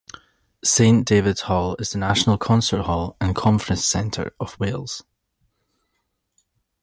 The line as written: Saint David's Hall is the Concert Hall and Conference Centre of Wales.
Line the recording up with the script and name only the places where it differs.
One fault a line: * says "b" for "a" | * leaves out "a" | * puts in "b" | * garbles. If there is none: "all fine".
* puts in "National"